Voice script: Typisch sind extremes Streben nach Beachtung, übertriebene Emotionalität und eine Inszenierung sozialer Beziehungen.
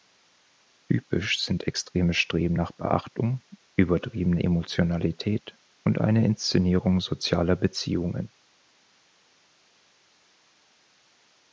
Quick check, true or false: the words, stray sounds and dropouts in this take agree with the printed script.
true